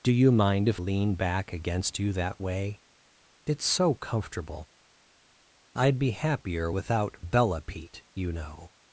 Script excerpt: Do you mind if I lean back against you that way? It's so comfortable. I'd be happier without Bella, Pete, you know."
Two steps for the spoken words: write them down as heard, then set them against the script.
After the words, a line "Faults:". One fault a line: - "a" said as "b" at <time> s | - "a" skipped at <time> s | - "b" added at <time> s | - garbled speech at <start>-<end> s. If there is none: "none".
Do you mind if lean back against you that way? It's so comfortable. I'd be happier without Bella, Pete, you know."
Faults:
- "I" skipped at 0.8 s